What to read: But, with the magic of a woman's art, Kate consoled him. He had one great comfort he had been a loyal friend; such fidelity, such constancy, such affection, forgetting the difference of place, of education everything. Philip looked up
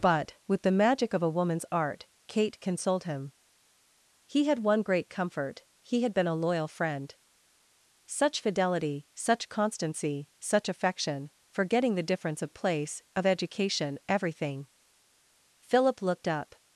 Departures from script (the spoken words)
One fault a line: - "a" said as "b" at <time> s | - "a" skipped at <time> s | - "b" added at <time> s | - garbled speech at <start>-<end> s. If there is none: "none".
none